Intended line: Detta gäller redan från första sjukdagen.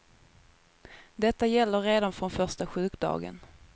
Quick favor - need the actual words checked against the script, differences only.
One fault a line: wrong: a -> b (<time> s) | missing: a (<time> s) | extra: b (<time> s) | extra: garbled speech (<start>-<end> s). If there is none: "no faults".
no faults